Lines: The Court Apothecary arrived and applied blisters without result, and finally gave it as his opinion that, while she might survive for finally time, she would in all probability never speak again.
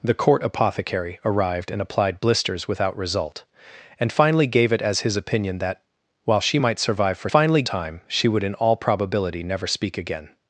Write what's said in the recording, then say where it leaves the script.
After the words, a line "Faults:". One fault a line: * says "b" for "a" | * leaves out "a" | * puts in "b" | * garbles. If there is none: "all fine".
The Court Apothecary arrived and applied blisters without result, and finally gave it as his opinion that, while she might survive for finally time, she would in all probability never speak again.
Faults:
all fine